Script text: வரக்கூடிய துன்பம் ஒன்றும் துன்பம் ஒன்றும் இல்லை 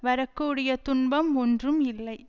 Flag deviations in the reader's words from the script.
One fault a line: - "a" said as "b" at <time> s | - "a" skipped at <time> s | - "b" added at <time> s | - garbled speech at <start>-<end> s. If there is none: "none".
- "துன்பம் ஒன்றும்" skipped at 1.8 s